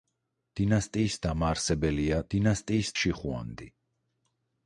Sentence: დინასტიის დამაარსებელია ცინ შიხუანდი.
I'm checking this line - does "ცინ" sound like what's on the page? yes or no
no